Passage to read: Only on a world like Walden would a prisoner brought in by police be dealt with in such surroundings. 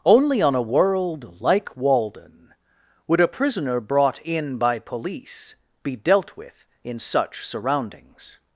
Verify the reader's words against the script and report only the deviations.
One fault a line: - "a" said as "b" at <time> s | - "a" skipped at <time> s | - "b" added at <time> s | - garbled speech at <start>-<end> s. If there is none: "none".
none